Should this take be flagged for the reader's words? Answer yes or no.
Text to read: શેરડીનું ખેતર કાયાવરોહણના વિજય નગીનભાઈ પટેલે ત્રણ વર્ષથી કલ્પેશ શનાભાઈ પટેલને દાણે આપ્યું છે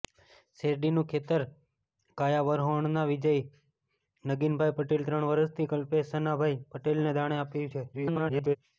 yes